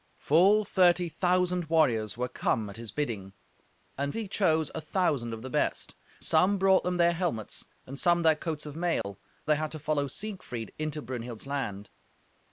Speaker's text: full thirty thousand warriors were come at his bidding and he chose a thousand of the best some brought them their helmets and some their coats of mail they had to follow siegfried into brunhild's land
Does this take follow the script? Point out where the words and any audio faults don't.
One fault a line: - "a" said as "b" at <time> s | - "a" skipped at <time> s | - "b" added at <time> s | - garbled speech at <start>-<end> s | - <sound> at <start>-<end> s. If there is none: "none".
- dropout at 9.0-9.0 s